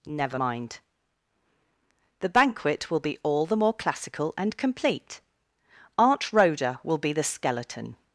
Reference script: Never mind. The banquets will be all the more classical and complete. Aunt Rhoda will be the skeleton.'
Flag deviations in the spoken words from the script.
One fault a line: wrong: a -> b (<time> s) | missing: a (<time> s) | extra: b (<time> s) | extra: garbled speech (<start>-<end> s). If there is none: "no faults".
wrong: banquets -> banquet (2.3 s)